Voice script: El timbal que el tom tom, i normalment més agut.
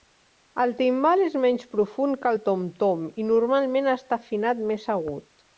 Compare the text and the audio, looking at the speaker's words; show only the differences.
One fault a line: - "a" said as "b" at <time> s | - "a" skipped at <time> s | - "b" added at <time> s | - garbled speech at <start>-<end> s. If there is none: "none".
- "és menys profund" added at 1.2 s
- "està afinat" added at 4.0 s